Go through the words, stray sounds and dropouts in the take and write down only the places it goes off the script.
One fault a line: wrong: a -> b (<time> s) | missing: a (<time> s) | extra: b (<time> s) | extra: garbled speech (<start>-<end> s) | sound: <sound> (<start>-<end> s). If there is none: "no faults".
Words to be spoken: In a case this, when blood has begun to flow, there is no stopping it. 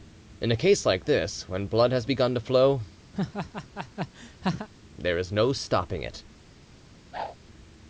extra: like (0.8 s)
sound: laugh (3.1-4.7 s)
sound: whoosh (7.1-7.4 s)